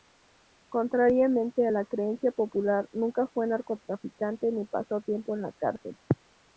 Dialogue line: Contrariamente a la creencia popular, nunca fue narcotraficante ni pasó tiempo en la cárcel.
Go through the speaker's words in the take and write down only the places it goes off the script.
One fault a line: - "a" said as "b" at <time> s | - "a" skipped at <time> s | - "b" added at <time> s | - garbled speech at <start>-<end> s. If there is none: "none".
none